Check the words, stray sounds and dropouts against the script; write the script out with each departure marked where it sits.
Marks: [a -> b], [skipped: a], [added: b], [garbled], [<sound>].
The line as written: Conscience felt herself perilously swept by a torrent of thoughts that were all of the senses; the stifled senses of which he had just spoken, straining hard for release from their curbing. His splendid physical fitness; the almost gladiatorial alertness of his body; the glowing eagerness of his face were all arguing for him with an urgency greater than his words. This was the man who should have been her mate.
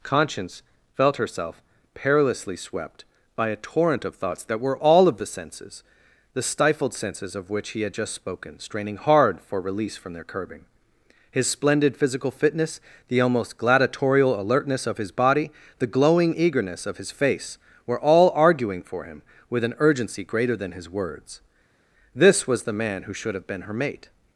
Conscience felt herself perilously swept by a torrent of thoughts that were all of the senses; the stifled senses of which he had just spoken, straining hard for release from their curbing. His splendid physical fitness; the almost gladiatorial alertness of his body; the glowing eagerness of his face were all arguing for him with an urgency greater than his words. This was the man who should have been her mate.